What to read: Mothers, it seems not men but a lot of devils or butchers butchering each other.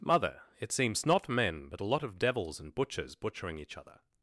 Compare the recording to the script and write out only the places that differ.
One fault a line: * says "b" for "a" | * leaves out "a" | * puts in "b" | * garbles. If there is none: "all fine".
* says "Mother" for "Mothers"
* says "and" for "or"